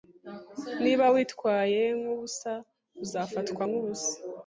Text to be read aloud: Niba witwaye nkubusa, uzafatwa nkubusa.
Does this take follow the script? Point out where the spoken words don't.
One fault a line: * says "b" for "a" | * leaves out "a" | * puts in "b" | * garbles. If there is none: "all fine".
all fine